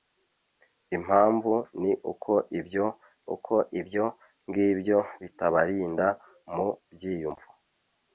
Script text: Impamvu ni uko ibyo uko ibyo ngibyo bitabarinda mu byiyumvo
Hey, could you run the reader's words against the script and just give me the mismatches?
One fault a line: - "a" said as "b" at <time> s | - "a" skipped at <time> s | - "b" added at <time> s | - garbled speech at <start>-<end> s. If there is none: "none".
none